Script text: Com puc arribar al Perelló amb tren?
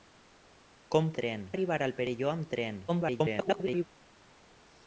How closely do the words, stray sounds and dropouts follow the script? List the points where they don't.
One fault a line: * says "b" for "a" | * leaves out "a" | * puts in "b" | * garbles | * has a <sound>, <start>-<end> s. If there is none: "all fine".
* says "tren" for "puc"
* garbles